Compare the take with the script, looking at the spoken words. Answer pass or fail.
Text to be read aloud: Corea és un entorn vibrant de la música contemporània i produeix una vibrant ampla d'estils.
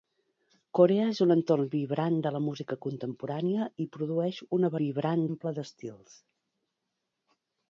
pass